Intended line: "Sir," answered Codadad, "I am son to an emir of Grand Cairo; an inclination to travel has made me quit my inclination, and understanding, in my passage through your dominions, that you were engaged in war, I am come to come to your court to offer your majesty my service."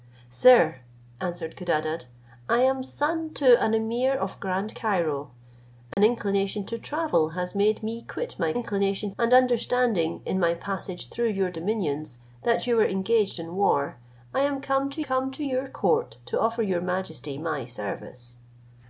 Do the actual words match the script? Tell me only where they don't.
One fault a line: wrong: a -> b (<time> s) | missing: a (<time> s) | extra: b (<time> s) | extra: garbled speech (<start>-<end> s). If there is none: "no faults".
no faults